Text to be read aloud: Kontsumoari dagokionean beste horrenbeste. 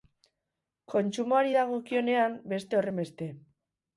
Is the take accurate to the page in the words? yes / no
yes